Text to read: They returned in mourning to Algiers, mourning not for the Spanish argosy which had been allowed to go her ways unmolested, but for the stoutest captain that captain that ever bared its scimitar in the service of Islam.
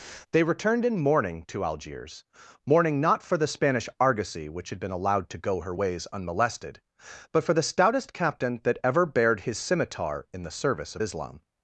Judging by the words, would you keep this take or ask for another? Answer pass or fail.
fail